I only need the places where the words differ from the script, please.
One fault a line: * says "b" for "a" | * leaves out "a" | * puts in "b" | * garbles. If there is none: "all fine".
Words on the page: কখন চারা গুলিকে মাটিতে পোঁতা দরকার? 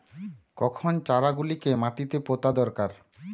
all fine